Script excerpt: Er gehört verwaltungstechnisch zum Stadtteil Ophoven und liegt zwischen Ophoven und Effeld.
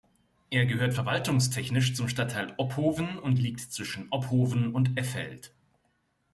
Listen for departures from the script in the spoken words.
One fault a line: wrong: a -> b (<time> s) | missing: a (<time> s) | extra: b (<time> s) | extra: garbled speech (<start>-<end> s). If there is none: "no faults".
no faults